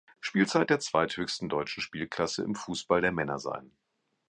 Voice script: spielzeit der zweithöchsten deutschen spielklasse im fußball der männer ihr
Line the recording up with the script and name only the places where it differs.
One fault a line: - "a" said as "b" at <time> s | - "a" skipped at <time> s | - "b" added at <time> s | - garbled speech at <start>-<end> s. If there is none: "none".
- "ihr" said as "sein" at 3.4 s